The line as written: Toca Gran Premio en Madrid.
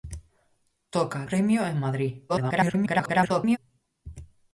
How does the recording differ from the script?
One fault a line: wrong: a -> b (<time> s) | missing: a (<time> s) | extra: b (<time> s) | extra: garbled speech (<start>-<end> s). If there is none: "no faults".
missing: Gran (1.3 s)
extra: garbled speech (2.3-3.6 s)